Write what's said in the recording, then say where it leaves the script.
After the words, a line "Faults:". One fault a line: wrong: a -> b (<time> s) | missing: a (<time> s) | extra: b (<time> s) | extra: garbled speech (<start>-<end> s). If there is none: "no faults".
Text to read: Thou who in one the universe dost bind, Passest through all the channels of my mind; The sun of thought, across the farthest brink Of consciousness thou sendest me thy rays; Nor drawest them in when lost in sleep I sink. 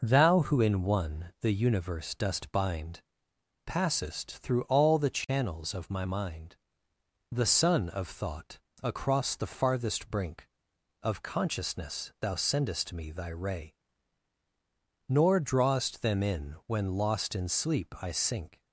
Thou who in one the universe dost bind, Passest through all the channels of my mind; The sun of thought, across the farthest brink Of consciousness thou sendest me thy ray; Nor drawest them in when lost in sleep I sink.
Faults:
wrong: rays -> ray (13.3 s)